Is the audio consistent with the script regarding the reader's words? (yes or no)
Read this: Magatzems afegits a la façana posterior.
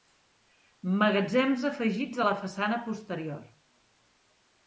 yes